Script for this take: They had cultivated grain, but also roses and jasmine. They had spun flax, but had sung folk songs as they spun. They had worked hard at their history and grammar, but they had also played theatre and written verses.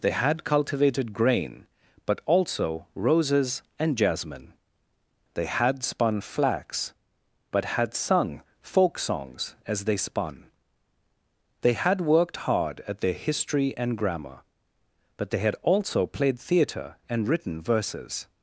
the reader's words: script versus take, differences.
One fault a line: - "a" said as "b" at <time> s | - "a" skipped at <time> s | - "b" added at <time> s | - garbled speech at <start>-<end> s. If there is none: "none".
none